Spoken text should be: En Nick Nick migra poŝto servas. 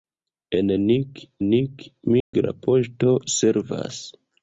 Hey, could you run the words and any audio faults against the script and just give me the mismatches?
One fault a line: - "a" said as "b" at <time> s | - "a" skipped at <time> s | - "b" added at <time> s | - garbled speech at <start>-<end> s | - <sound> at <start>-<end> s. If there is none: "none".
- dropout at 2.2-2.3 s